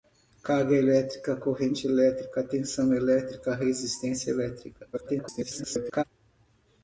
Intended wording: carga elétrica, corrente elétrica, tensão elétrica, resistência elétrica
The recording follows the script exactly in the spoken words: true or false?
false